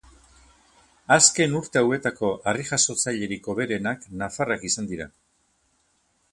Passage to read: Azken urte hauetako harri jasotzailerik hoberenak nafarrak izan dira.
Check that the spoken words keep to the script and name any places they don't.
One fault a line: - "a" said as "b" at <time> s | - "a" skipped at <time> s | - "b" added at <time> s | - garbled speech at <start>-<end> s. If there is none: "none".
none